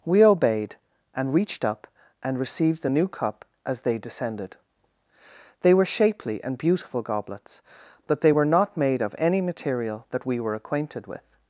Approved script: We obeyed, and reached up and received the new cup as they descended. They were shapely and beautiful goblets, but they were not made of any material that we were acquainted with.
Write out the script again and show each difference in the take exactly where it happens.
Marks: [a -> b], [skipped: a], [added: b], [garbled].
We obeyed, and reached up and received the new cup as they descended. They were shapely and beautiful goblets, but they were not made of any material that we were acquainted with.